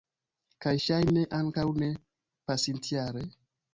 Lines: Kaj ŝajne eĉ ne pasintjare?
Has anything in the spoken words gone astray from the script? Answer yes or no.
yes